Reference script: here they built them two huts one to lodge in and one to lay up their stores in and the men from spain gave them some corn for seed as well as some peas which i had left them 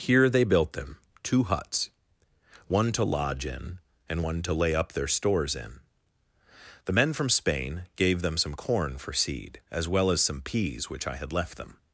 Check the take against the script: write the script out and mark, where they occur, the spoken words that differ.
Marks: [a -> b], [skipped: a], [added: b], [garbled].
here they built them two huts one to lodge in and one to lay up their stores in [skipped: and] the men from spain gave them some corn for seed as well as some peas which i had left them